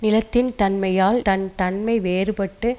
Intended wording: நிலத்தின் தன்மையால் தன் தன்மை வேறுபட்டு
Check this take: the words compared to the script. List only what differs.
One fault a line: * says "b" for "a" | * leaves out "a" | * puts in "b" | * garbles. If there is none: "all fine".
all fine